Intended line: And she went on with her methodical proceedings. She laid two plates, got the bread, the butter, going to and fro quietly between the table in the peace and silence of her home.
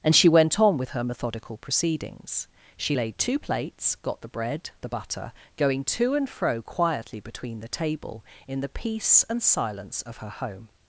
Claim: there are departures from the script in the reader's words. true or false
false